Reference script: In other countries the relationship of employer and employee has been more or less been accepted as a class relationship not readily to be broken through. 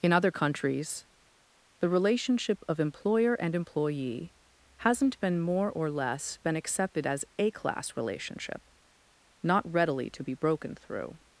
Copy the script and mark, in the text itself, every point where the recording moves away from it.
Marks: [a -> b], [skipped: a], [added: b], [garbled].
In other countries the relationship of employer and employee [has -> hasn't] been more or less been accepted as a class relationship not readily to be broken through.